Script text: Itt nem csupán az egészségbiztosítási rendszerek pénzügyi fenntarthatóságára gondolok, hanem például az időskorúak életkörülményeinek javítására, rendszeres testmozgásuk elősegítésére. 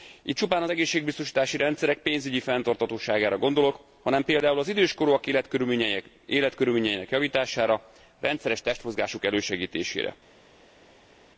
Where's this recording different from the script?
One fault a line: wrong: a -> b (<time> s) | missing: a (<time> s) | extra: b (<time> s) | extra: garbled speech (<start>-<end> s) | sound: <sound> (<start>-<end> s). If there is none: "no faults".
missing: nem (0.4 s)